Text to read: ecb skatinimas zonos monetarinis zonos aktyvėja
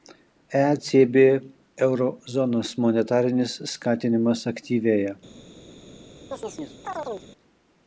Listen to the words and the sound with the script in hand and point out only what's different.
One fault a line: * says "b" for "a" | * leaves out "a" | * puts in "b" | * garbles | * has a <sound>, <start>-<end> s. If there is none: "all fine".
* says "euro" for "skatinimas"
* says "skatinimas" for "zonos"
* has a chirp, 6.3-7.3 s